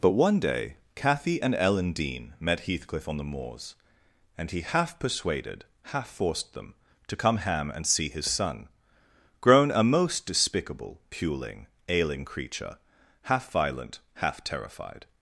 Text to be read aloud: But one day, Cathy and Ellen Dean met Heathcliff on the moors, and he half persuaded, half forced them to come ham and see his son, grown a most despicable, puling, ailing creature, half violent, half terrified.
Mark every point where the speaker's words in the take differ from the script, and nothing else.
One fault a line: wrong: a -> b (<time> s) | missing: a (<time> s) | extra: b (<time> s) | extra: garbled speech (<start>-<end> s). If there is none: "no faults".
no faults